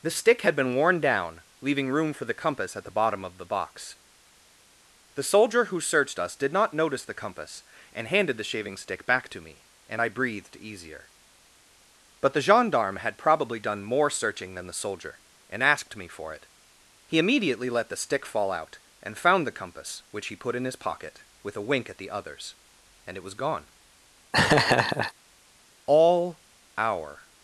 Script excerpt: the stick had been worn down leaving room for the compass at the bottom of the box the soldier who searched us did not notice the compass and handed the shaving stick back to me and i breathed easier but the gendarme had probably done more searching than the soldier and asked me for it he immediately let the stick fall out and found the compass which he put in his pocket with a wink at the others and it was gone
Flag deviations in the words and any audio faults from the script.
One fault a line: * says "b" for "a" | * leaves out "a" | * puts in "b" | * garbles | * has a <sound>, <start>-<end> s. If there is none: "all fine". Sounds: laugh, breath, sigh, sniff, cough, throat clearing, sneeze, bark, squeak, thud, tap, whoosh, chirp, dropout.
* has a laugh, 24.3-25.1 s
* puts in "all our"